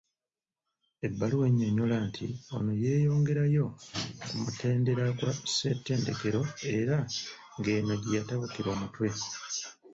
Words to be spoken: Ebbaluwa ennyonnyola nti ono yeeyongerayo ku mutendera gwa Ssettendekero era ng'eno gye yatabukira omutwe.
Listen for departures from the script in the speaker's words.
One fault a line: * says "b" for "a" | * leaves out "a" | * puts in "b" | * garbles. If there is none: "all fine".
all fine